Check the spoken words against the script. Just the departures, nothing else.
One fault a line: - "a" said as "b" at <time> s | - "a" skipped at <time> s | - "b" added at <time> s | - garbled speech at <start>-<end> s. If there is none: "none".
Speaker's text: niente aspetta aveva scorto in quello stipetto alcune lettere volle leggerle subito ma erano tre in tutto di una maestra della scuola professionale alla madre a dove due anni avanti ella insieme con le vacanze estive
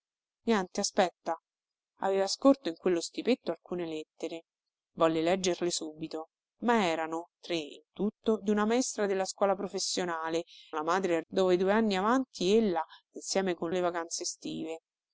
none